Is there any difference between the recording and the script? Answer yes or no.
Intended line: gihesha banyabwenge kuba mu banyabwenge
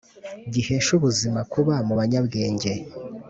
yes